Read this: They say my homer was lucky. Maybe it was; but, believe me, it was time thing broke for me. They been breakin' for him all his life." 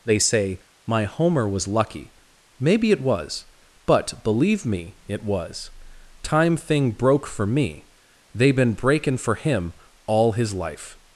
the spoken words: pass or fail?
pass